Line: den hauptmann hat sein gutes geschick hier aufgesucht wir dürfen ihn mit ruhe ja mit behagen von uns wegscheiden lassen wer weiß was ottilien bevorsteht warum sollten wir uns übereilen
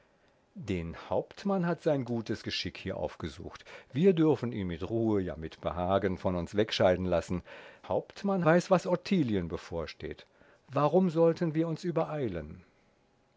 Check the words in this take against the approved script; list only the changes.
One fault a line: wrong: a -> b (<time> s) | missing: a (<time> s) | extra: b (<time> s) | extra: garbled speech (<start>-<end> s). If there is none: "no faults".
wrong: wer -> hauptmann (7.9 s)